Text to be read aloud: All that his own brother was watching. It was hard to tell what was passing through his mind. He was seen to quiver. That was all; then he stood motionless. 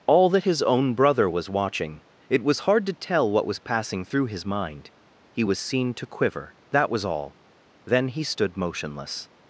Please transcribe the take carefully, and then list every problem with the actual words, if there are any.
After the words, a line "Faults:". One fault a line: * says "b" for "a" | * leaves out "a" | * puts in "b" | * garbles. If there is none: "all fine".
All that his own brother was watching. It was hard to tell what was passing through his mind. He was seen to quiver. That was all; then he stood motionless.
Faults:
all fine